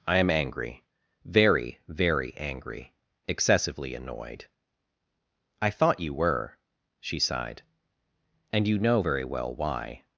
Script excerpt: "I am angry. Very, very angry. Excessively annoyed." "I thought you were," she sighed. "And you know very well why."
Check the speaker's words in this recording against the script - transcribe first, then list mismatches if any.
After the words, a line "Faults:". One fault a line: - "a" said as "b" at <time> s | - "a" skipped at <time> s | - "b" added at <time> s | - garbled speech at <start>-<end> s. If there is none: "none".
"I am angry. Very, very angry. Excessively annoyed." "I thought you were," she sighed. "And you know very well why."
Faults:
none